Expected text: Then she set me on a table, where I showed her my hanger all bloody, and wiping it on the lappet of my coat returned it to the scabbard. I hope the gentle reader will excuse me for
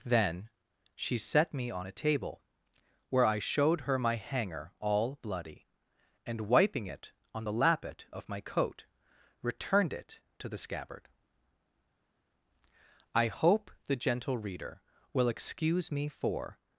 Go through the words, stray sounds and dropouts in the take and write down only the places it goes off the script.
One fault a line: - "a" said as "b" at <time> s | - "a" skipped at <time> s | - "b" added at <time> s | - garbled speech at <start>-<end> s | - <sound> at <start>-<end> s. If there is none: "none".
none